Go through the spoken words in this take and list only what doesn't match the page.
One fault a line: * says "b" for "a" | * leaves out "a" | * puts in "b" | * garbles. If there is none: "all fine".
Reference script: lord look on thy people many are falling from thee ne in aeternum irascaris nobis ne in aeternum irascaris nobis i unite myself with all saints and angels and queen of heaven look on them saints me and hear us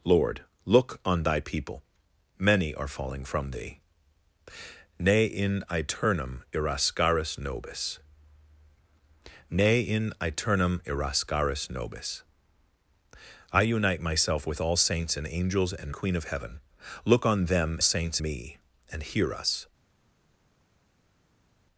all fine